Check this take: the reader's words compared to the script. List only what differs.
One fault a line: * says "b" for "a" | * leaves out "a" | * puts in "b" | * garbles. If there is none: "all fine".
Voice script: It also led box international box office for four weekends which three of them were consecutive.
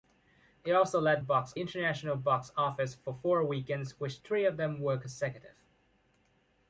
all fine